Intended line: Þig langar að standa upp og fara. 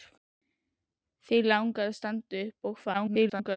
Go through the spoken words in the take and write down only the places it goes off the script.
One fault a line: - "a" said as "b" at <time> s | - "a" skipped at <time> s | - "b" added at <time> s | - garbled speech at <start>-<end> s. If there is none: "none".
- garbled speech at 2.9-3.6 s